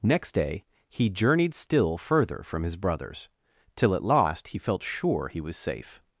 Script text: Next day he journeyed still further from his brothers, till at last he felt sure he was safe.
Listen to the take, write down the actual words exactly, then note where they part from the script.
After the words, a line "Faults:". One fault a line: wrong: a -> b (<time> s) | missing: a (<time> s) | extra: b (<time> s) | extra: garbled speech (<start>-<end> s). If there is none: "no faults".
Next day he journeyed still further from his brothers, till at last he felt sure he was safe.
Faults:
no faults